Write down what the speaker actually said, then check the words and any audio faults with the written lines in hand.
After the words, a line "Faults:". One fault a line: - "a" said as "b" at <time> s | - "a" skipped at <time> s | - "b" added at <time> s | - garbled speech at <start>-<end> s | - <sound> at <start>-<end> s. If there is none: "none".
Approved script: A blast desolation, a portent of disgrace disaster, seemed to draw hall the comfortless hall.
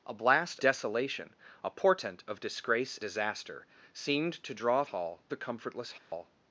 A blast desolation, a portent of disgrace disaster, seemed to draw hall the comfortless hall.
Faults:
- dropout at 6.0-6.1 s